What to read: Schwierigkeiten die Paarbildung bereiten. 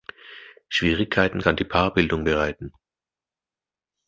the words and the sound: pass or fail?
fail